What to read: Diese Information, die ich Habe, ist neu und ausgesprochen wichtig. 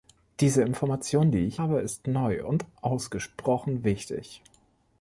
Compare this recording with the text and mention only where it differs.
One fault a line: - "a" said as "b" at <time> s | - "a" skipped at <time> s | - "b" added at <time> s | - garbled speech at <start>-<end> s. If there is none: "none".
none